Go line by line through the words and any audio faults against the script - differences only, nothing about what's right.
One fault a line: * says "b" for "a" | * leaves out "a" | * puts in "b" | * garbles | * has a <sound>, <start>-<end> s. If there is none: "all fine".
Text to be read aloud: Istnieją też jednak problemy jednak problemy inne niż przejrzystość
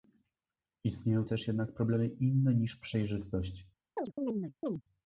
* leaves out "jednak problemy"
* has a chirp, 4.0-4.8 s